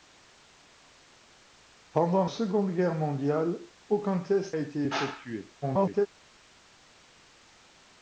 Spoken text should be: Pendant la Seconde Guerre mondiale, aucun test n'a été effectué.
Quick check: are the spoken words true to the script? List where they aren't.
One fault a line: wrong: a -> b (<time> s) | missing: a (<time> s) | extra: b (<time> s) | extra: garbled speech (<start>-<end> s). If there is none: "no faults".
missing: la (2.2 s)
missing: n'a (4.6 s)
extra: garbled speech (5.6-6.1 s)